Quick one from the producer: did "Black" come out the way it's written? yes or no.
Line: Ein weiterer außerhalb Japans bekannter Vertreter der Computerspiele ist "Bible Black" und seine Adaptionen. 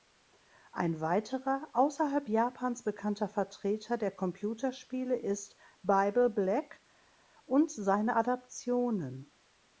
yes